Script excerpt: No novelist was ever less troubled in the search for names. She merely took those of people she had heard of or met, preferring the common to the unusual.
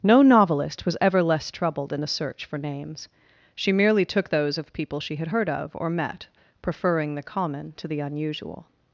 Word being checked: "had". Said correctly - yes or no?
yes